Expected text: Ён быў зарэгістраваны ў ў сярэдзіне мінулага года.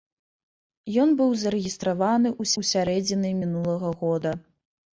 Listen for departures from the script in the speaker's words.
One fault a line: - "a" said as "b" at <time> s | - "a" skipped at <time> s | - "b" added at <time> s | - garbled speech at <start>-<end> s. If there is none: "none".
none